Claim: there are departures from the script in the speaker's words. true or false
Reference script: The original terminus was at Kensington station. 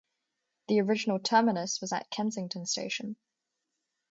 false